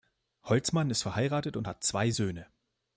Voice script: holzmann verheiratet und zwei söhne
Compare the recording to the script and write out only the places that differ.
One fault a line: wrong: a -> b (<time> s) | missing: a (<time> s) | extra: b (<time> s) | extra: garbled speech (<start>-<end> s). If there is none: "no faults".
extra: ist (0.9 s)
extra: hat (1.7 s)